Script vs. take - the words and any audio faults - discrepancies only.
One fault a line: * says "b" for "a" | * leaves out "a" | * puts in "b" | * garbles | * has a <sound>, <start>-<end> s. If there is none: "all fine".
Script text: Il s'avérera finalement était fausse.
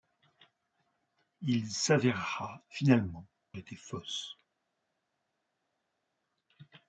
all fine